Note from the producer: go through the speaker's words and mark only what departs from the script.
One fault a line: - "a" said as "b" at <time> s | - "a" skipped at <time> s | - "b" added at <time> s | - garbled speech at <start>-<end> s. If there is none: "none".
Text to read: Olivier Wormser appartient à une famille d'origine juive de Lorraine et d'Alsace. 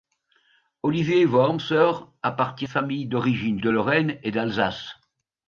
- "à une" skipped at 2.6 s
- "juive" skipped at 3.6 s